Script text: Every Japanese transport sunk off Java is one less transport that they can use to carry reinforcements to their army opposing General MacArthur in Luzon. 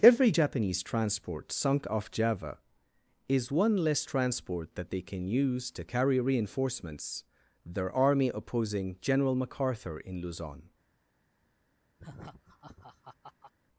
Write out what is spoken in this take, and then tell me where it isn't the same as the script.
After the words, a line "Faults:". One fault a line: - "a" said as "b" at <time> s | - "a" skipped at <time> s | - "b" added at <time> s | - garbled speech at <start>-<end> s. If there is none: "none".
Every Japanese transport sunk off Java is one less transport that they can use to carry reinforcements their army opposing General MacArthur in Luzon.
Faults:
- "to" skipped at 7.2 s